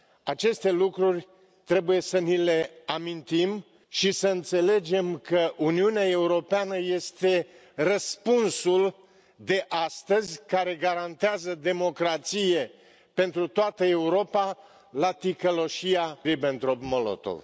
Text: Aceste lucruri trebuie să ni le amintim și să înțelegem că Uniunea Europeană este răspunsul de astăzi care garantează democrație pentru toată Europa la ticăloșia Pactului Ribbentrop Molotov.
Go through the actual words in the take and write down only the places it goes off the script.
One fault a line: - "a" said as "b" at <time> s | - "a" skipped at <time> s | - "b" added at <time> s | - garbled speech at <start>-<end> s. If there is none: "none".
- "Pactului" skipped at 16.2 s